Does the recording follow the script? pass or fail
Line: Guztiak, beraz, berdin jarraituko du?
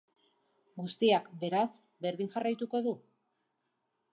pass